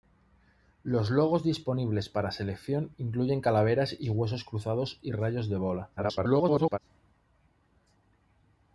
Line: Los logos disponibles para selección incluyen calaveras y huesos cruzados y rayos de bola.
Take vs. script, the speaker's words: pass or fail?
fail